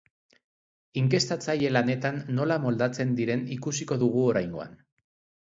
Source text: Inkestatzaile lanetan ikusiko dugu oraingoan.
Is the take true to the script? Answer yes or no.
no